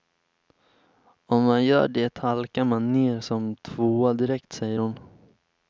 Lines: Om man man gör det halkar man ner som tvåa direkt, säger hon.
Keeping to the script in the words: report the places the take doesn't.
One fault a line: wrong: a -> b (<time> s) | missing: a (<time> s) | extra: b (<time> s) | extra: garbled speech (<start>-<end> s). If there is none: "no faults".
missing: man (1.6 s)